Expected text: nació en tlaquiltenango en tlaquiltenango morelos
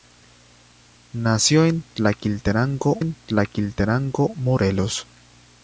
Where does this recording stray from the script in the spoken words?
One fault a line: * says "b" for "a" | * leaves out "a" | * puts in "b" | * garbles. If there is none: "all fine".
all fine